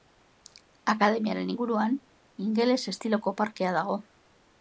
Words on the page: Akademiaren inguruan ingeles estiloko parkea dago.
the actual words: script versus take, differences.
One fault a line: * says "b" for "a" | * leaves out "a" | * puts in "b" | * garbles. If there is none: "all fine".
all fine